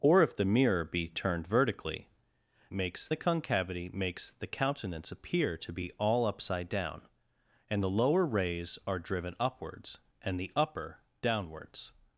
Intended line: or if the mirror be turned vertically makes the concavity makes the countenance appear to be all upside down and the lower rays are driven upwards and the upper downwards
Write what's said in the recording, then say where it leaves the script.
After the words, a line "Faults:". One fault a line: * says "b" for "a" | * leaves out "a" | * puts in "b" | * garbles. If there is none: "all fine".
or if the mirror be turned vertically makes the concavity makes the countenance appear to be all upside down and the lower rays are driven upwards and the upper downwards
Faults:
all fine